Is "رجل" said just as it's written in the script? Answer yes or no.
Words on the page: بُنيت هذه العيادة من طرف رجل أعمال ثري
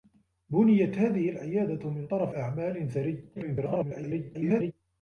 no